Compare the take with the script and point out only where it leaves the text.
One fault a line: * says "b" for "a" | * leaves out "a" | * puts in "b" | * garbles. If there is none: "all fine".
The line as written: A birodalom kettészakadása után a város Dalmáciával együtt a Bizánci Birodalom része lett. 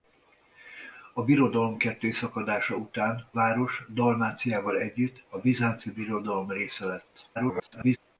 * leaves out "a"
* garbles